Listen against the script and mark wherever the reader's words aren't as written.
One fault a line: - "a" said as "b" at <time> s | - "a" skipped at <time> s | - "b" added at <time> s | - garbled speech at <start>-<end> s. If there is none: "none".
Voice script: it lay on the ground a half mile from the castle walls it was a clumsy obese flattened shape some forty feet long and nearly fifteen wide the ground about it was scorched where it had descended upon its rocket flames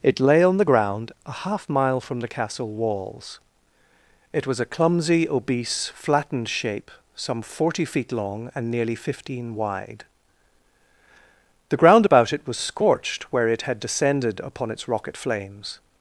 none